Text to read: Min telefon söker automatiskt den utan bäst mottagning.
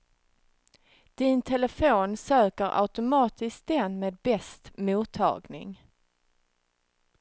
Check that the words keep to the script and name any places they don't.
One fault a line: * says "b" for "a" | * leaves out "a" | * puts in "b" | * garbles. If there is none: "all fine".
* says "Din" for "Min"
* says "med" for "utan"